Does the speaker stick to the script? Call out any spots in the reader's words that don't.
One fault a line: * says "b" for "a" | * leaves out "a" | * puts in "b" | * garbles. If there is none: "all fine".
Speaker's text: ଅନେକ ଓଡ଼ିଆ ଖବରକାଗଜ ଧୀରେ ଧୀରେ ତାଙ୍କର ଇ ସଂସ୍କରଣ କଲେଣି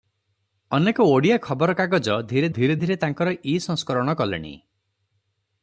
* puts in "ଧୀରେ"